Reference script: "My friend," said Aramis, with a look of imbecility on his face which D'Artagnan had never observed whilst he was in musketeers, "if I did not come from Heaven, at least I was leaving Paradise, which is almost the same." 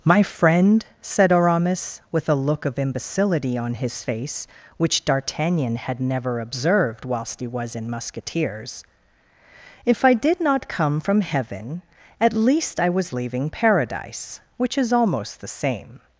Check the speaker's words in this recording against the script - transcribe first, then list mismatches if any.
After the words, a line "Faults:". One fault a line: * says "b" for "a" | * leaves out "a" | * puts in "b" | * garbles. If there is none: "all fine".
"My friend," said Aramis, with a look of imbecility on his face which D'Artagnan had never observed whilst he was in musketeers, "if I did not come from Heaven, at least I was leaving Paradise, which is almost the same."
Faults:
all fine